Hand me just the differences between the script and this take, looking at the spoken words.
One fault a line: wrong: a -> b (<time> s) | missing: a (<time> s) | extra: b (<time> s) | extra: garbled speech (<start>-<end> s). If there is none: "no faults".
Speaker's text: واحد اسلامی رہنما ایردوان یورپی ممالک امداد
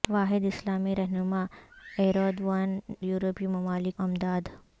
no faults